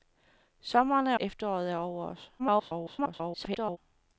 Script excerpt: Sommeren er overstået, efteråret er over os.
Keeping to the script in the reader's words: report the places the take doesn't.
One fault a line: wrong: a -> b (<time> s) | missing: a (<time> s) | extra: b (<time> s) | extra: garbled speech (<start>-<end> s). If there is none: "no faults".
missing: overstået (1.2 s)
extra: garbled speech (2.4-3.8 s)